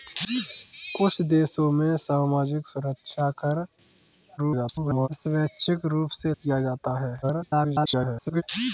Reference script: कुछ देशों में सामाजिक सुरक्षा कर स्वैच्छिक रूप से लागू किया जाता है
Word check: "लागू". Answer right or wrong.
wrong